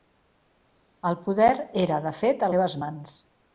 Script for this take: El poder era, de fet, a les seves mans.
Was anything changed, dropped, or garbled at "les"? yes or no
yes